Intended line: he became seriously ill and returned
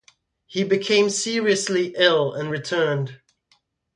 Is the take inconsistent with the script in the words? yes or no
no